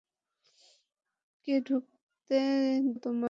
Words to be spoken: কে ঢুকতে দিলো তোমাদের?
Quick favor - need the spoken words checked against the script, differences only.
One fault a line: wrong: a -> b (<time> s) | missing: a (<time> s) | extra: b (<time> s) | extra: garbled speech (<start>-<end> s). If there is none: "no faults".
missing: দিলো (2.4 s)